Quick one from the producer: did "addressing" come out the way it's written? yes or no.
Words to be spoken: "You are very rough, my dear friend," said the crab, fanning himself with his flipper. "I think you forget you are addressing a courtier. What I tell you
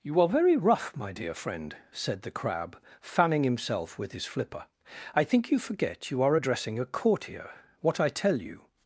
yes